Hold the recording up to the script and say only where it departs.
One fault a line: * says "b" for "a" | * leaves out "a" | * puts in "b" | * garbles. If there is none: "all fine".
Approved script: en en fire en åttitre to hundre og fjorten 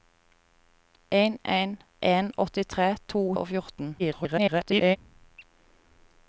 * leaves out "fire"
* leaves out "hundre"
* garbles